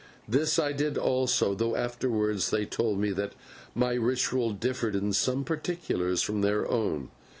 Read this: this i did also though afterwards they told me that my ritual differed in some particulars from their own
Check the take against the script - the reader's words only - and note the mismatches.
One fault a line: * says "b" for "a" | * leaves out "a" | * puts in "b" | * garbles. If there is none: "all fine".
all fine